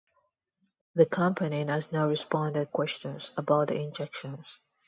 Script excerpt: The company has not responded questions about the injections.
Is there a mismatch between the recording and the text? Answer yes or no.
no